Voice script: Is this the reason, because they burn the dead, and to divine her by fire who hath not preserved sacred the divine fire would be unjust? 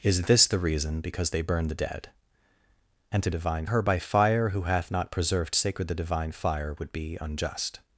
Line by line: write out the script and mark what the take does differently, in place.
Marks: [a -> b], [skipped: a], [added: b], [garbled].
Is this the reason, because they burn the dead, and to divine her by fire who hath not preserved sacred the divine fire would be unjust?